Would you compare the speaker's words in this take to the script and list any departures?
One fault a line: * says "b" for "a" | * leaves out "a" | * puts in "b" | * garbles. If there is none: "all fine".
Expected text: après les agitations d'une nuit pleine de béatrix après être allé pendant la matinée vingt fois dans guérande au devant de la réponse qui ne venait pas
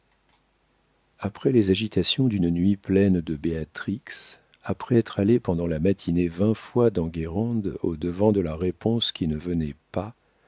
all fine